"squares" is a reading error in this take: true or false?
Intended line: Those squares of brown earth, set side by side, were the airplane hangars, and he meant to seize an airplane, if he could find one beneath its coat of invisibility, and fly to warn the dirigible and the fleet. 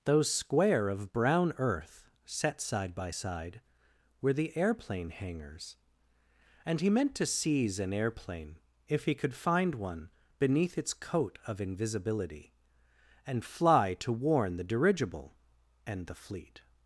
true